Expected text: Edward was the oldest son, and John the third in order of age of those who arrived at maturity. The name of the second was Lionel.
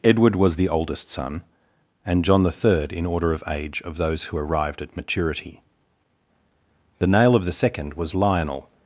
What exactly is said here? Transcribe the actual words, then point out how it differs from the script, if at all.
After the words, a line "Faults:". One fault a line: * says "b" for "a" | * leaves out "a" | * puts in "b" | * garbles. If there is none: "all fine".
Edward was the oldest son, and John the third in order of age of those who arrived at maturity. The nail of the second was Lionel.
Faults:
* says "nail" for "name"